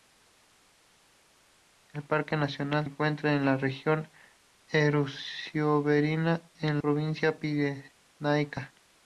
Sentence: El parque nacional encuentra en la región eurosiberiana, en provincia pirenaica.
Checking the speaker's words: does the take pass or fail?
pass